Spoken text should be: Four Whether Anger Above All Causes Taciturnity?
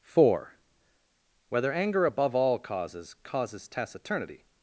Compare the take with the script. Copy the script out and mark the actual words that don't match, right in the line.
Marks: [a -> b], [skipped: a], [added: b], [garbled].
Four Whether Anger Above All Causes [added: Causes] Taciturnity?